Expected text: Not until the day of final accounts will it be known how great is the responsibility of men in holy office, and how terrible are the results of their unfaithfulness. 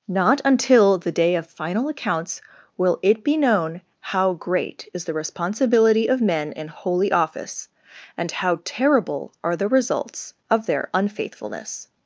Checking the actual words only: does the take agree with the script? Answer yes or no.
yes